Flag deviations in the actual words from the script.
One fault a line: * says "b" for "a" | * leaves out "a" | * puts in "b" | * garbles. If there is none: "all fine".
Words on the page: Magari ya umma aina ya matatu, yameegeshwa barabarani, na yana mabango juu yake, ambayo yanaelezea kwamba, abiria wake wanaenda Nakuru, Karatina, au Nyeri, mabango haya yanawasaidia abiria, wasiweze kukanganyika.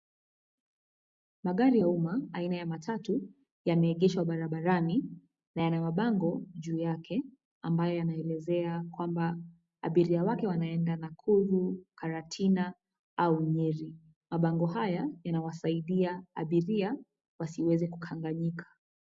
all fine